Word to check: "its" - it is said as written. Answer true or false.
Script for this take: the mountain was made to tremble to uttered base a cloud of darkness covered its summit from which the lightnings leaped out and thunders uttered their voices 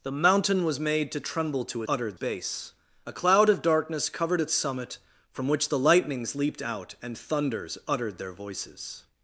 true